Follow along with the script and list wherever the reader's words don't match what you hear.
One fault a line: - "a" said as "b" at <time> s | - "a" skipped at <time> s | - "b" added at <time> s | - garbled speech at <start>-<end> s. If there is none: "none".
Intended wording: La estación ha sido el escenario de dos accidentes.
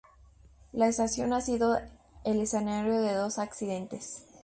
none